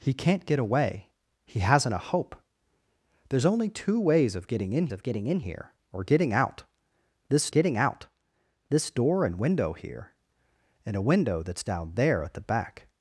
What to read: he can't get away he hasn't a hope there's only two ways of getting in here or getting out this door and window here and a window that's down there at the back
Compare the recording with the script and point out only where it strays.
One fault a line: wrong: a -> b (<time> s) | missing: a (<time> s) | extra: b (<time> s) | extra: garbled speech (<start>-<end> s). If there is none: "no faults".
extra: of getting in (4.9 s)
extra: getting out this (7.5 s)